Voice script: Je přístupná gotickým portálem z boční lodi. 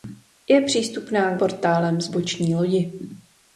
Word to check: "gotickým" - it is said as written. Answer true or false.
false